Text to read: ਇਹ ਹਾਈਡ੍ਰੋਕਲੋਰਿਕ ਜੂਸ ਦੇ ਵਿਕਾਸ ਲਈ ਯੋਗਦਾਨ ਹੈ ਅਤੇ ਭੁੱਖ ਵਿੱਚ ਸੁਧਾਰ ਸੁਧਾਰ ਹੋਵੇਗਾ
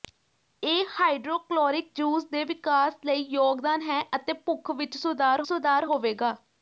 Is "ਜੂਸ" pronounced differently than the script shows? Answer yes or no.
no